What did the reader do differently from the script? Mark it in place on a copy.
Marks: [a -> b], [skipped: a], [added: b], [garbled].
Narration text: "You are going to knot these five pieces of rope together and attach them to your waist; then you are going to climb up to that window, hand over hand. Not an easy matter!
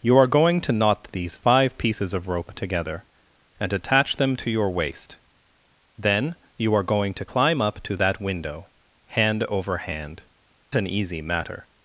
"You are going to knot these five pieces of rope together and attach them to your waist; then you are going to climb up to that window, hand over hand. [skipped: Not] an easy matter!